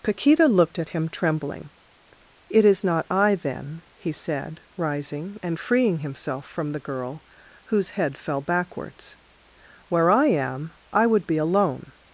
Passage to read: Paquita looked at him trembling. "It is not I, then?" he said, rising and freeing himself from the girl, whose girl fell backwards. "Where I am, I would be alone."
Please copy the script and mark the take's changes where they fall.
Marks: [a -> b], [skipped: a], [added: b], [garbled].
Paquita looked at him trembling. "It is not I, then?" he said, rising and freeing himself from the girl, whose [girl -> head] fell backwards. "Where I am, I would be alone."